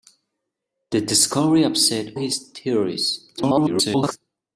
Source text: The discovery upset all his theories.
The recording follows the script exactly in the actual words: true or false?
false